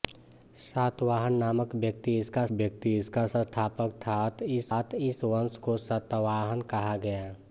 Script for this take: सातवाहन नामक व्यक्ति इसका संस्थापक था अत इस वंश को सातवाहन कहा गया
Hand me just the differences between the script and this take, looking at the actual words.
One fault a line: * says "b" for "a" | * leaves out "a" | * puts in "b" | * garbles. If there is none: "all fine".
* puts in "व्यक्ति इसका"
* puts in "अत इस"